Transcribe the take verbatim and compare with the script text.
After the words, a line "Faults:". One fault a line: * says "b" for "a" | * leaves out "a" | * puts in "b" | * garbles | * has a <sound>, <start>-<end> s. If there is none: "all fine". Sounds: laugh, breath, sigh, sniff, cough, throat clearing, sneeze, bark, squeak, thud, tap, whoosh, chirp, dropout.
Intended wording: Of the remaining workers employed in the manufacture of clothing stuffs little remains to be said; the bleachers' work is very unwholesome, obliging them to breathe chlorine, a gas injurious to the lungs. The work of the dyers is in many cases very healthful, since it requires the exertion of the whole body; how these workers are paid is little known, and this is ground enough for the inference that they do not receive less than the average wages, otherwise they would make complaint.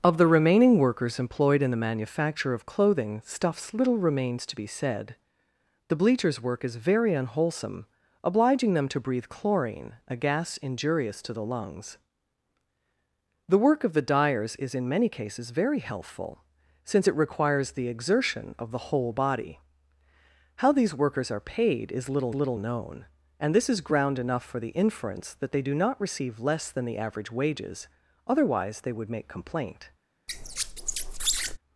Of the remaining workers employed in the manufacture of clothing stuffs little remains to be said; the bleachers' work is very unwholesome, obliging them to breathe chlorine, a gas injurious to the lungs. The work of the dyers is in many cases very healthful, since it requires the exertion of the whole body; how these workers are paid is little little known, and this is ground enough for the inference that they do not receive less than the average wages, otherwise they would make complaint.
Faults:
* puts in "little"
* has a squeak, 30.3-31.6 s